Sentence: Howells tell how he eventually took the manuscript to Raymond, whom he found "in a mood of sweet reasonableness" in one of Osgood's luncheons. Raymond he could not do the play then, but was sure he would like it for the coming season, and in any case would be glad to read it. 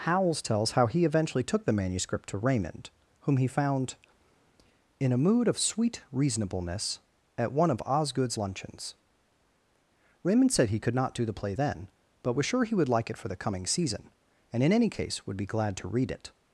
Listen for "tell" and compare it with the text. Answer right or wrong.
wrong